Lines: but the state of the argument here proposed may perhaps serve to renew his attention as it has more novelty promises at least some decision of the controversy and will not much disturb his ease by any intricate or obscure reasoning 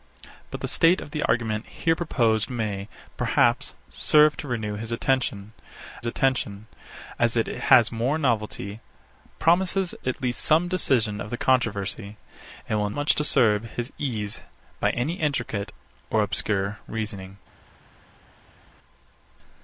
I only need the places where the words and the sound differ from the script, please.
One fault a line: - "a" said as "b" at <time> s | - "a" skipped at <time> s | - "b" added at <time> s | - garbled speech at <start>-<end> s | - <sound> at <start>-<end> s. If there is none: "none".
- "attention" added at 6.1 s
- "not" skipped at 12.9 s